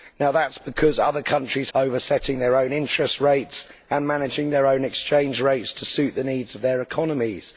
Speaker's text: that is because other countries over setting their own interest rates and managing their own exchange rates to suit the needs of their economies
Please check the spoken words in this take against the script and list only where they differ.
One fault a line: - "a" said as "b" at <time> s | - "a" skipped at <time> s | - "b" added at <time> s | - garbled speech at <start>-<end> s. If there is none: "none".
none